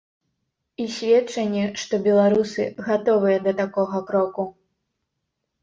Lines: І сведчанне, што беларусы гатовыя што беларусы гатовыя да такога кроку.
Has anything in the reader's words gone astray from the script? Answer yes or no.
yes